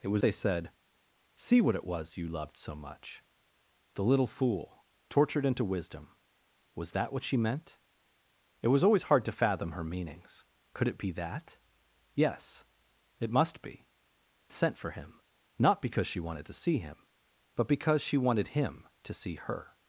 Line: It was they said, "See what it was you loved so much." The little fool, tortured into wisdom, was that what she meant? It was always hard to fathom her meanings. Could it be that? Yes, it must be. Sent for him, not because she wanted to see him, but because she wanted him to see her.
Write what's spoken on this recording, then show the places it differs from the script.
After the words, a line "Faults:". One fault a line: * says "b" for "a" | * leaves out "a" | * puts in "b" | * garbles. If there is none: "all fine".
It was they said, "See what it was you loved so much." The little fool, tortured into wisdom, was that what she meant? It was always hard to fathom her meanings. Could it be that? Yes, it must be. Sent for him, not because she wanted to see him, but because she wanted him to see her.
Faults:
all fine